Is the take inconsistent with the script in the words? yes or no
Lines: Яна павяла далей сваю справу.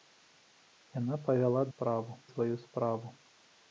yes